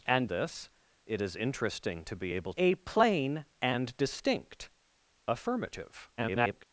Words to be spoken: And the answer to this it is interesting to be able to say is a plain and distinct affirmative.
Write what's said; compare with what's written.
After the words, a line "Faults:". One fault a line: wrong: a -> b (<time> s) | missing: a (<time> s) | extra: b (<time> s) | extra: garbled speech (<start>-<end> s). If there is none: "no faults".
And this it is interesting to be able a plain and distinct affirmative. [garbled]
Faults:
missing: the answer to (0.3 s)
missing: to say is (2.5 s)
extra: garbled speech (6.2-6.6 s)